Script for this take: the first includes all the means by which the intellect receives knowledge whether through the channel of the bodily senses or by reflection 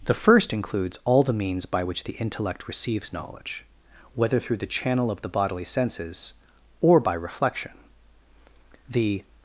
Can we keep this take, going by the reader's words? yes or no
no